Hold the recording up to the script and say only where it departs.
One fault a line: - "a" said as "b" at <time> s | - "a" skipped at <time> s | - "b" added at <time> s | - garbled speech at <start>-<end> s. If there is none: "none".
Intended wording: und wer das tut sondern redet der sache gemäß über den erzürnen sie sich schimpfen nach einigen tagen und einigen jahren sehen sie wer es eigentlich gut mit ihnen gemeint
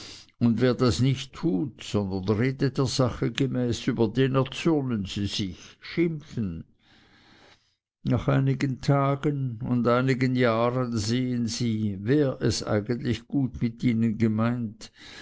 - "nicht" added at 1.0 s